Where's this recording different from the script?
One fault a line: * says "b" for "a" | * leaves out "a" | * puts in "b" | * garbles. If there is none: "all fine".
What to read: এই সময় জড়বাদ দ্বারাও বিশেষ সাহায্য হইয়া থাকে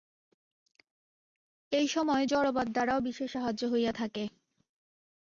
all fine